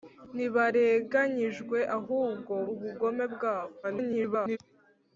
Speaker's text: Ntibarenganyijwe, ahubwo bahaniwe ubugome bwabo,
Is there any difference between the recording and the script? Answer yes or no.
yes